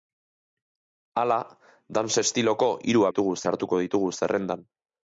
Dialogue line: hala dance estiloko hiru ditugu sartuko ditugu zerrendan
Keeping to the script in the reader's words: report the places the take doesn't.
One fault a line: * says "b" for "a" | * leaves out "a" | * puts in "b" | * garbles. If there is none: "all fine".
all fine